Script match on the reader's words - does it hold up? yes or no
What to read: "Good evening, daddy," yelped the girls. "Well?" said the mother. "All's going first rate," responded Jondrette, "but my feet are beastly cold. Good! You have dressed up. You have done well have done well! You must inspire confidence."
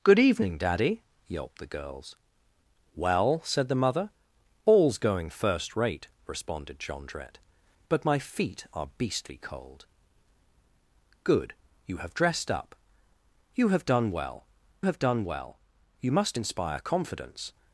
yes